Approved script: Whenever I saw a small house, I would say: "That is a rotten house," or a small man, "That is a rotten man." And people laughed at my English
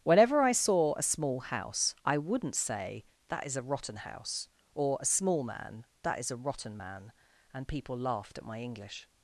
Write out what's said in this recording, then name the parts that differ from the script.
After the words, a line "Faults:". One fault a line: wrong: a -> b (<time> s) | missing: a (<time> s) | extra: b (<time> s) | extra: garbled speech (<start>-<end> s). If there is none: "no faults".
Whenever I saw a small house, I wouldn't say: "That is a rotten house," or a small man, "That is a rotten man." And people laughed at my English
Faults:
wrong: would -> wouldn't (2.2 s)